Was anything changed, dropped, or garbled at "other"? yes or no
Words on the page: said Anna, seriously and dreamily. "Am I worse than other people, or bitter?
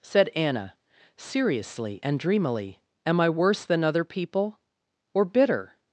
no